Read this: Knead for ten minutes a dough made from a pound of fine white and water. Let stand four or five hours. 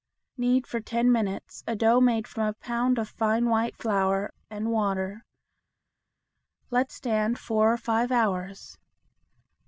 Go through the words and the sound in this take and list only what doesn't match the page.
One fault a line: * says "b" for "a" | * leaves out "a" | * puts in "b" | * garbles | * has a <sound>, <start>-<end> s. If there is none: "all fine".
* puts in "flour"